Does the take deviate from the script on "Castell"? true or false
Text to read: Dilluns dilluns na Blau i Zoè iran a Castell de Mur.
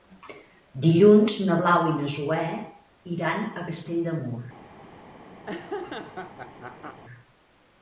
false